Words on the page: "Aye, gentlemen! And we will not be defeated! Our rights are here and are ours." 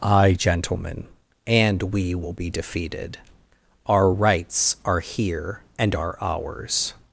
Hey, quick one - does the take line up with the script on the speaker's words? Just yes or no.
no